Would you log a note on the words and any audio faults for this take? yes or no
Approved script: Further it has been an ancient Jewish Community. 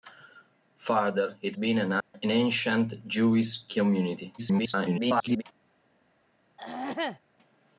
yes